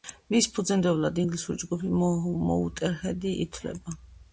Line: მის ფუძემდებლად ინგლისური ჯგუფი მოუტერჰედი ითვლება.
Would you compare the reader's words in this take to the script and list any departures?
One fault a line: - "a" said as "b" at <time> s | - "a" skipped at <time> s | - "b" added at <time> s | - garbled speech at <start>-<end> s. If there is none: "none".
none